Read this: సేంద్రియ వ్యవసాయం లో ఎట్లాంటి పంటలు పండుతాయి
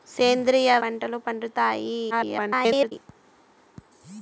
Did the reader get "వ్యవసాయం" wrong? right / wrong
wrong